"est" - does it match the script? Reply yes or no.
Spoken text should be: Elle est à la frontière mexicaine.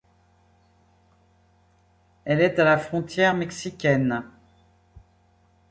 yes